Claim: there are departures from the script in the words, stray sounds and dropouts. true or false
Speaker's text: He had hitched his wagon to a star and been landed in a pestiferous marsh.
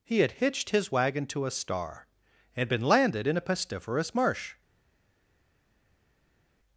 false